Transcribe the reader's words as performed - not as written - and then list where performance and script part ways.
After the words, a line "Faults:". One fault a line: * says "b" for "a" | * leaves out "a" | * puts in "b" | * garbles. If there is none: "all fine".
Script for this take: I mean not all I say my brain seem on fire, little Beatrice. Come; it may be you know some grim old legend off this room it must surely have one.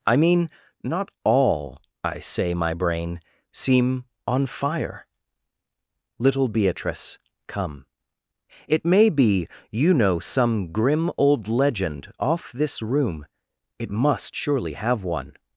I mean not all I say my brain seem on fire, little Beatrice. Come; it may be you know some grim old legend off this room it must surely have one.
Faults:
all fine